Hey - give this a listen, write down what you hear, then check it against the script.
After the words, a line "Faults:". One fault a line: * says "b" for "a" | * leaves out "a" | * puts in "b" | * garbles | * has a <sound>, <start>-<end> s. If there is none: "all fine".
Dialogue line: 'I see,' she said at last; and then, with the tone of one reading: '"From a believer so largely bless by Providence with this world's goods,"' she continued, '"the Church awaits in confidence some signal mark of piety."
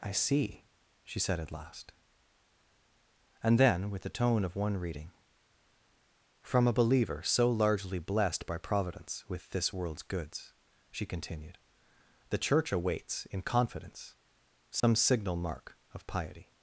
'I see,' she said at last; and then, with the tone of one reading: '"From a believer so largely blessed by Providence with this world's goods,"' she continued, '"the Church awaits in confidence some signal mark of piety."
Faults:
* says "blessed" for "bless"
* has a dropout, 14.8-14.8 s